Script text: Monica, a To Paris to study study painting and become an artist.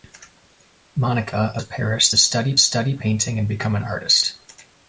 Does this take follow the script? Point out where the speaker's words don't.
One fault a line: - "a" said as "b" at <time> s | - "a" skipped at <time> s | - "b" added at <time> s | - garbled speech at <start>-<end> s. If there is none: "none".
none